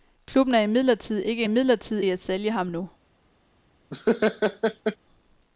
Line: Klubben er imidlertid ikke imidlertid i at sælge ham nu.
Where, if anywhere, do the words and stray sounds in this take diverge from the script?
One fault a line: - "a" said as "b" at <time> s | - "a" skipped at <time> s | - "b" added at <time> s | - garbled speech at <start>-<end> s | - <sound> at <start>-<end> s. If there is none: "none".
- laugh at 3.9-5.0 s